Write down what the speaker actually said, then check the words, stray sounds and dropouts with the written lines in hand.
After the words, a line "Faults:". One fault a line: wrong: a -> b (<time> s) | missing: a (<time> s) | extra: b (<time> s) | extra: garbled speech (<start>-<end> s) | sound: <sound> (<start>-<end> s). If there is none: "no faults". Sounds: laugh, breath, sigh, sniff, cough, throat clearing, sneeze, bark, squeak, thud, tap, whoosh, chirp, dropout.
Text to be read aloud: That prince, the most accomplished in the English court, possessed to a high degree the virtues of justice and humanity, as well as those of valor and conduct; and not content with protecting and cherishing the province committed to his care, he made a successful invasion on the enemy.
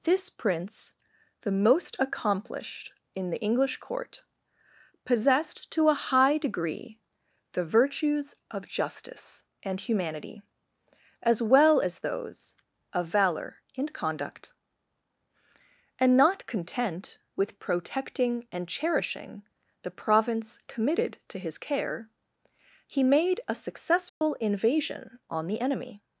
This prince, the most accomplished in the English court, possessed to a high degree the virtues of justice and humanity, as well as those of valor and conduct; and not content with protecting and cherishing the province committed to his care, he made a successful invasion on the enemy.
Faults:
wrong: That -> This (0.0 s)
sound: dropout (24.1-24.2 s)